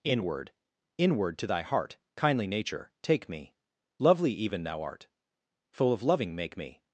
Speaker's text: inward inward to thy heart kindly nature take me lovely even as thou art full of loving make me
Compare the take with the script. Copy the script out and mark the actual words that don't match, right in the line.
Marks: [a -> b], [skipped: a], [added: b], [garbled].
inward inward to thy heart kindly nature take me lovely even [skipped: as] thou art full of loving make me